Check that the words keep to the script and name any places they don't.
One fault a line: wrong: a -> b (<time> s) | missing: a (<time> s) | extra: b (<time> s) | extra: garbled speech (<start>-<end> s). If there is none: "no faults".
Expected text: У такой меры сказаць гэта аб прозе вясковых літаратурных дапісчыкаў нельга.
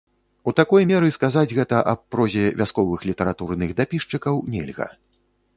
no faults